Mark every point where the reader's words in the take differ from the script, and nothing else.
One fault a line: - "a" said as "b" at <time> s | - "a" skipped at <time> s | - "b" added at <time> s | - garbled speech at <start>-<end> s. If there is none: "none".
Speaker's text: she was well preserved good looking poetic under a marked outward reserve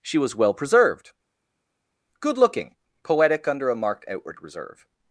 none